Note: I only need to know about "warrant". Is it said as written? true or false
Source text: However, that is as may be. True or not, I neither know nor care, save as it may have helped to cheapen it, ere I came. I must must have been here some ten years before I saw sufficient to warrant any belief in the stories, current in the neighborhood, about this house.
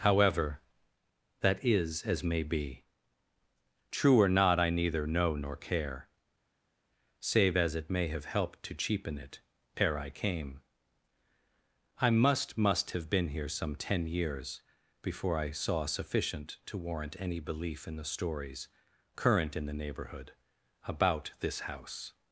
true